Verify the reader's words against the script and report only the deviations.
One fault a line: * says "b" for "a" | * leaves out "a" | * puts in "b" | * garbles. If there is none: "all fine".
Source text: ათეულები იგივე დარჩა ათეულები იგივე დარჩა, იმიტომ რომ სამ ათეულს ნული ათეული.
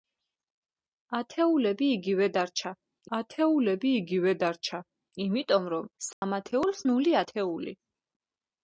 all fine